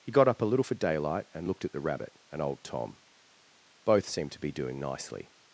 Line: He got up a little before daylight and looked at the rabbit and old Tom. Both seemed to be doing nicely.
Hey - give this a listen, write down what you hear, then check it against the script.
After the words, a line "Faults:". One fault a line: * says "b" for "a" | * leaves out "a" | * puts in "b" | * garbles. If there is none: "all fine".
He got up a little for daylight and looked at the rabbit and old Tom. Both seemed to be doing nicely.
Faults:
* says "for" for "before"